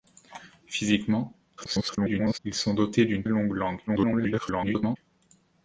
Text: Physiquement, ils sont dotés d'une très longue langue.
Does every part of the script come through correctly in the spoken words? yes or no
no